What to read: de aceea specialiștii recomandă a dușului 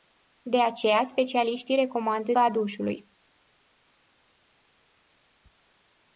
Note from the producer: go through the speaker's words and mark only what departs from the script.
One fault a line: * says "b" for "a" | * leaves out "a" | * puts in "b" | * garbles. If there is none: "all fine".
all fine